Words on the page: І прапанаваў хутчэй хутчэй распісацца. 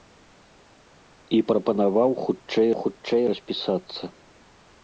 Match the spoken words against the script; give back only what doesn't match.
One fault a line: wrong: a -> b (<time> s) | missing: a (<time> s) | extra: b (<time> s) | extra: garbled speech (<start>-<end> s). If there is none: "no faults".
no faults